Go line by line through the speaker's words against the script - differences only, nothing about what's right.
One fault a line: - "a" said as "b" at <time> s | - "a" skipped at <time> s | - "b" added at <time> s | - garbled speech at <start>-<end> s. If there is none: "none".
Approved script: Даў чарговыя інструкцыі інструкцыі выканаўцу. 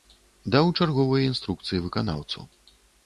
- "інструкцыі" skipped at 1.8 s